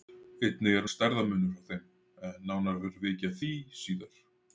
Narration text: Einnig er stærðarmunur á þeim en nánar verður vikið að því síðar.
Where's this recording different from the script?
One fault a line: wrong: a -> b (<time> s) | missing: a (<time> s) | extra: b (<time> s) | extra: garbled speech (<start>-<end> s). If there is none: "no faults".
no faults